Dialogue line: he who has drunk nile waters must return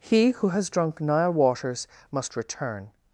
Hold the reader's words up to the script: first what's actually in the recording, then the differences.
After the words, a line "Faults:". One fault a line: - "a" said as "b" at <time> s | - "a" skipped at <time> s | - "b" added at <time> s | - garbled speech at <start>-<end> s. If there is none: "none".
he who has drunk nile waters must return
Faults:
none